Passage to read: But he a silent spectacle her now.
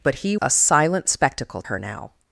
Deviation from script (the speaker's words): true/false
false